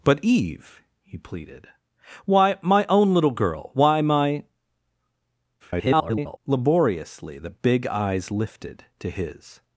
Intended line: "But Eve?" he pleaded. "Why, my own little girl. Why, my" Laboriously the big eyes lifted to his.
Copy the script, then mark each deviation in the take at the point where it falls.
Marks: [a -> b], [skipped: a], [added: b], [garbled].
"But Eve?" he pleaded. "Why, my own little girl. Why, my" [garbled] Laboriously the big eyes lifted to his.